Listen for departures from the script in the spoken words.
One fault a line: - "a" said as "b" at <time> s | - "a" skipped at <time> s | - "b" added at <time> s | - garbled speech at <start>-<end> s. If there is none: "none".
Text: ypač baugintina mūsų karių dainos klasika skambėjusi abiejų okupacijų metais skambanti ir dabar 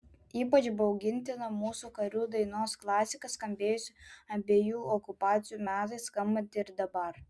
none